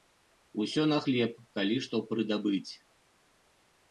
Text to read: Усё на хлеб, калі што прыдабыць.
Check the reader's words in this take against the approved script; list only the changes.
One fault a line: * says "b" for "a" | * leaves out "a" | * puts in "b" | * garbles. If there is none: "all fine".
all fine